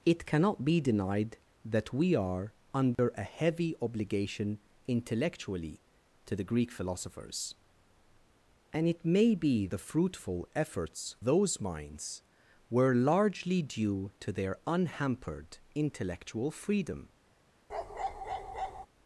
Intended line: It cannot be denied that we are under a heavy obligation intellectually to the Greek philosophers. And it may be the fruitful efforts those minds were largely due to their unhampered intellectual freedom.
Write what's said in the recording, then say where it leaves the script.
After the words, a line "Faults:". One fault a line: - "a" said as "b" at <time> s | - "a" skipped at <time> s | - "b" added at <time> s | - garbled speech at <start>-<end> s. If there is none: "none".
It cannot be denied that we are under a heavy obligation intellectually to the Greek philosophers. And it may be the fruitful efforts those minds were largely due to their unhampered intellectual freedom.
Faults:
none